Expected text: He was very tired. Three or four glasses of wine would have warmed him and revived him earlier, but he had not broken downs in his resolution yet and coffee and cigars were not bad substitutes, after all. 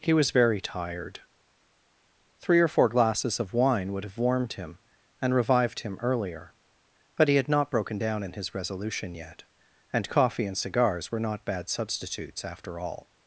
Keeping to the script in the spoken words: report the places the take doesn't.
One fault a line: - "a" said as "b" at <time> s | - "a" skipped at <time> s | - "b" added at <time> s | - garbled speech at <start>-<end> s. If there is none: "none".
- "downs" said as "down" at 8.0 s